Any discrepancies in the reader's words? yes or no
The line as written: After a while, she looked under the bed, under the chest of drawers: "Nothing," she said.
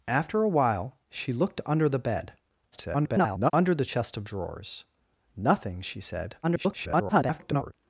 yes